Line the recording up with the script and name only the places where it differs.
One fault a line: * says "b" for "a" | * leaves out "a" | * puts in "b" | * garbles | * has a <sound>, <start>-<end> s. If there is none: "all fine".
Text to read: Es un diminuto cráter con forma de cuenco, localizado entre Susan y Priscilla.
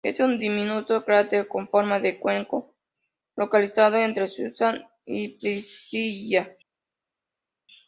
all fine